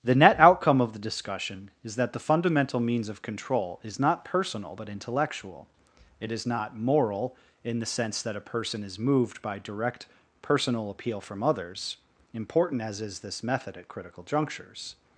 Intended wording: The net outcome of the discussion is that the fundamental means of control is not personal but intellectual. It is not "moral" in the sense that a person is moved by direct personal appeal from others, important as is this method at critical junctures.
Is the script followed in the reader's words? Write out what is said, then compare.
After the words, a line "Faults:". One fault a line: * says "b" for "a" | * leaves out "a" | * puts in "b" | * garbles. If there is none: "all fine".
The net outcome of the discussion is that the fundamental means of control is not personal but intellectual. It is not "moral" in the sense that a person is moved by direct personal appeal from others, important as is this method at critical junctures.
Faults:
all fine